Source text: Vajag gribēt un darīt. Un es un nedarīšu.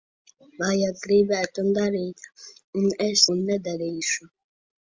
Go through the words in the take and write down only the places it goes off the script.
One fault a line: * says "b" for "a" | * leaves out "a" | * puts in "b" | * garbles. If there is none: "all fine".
all fine